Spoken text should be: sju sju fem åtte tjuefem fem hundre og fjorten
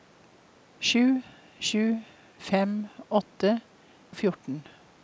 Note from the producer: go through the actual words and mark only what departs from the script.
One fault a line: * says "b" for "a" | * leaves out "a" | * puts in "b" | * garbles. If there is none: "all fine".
* leaves out "tjuefem fem hundre"